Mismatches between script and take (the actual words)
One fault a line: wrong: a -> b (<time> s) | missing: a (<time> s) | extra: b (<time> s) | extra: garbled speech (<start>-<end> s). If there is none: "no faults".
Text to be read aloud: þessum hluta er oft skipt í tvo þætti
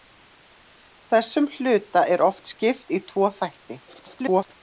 extra: garbled speech (3.9-4.5 s)